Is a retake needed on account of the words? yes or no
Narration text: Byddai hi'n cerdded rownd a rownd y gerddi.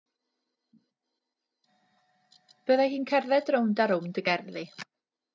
no